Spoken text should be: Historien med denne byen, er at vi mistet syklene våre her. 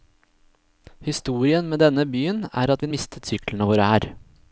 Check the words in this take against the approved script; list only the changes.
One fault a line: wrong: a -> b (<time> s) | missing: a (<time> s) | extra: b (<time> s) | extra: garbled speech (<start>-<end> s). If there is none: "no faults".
no faults